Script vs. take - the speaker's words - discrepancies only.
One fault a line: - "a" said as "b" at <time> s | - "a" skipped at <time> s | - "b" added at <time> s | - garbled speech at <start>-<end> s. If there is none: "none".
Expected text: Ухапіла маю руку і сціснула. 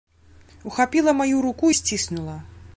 - "і" skipped at 1.7 s